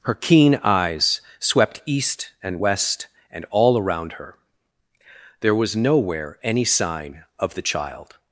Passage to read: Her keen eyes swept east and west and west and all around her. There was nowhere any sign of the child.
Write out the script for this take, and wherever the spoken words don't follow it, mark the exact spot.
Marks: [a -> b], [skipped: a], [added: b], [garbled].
Her keen eyes swept east and west and [skipped: west and] all around her. There was nowhere any sign of the child.